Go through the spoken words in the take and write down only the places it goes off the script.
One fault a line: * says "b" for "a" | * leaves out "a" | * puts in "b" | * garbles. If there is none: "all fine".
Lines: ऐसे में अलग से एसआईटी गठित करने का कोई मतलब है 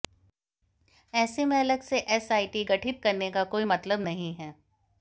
* puts in "नहीं"